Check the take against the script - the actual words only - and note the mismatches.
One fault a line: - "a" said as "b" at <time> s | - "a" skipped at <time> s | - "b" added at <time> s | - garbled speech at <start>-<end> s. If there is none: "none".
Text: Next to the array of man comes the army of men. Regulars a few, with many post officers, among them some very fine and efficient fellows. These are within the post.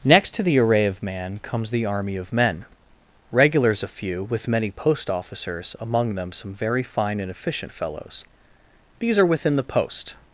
none